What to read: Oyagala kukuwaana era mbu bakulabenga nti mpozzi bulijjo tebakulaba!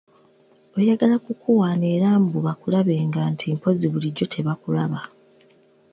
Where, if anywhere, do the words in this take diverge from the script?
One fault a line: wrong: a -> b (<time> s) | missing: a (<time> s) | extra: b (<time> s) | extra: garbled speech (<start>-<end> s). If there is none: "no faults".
no faults